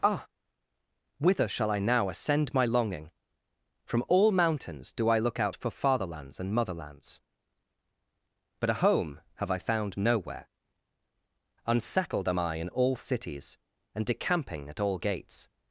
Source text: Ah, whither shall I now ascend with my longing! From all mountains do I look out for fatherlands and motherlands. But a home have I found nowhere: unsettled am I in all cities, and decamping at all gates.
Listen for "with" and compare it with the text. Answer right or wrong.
wrong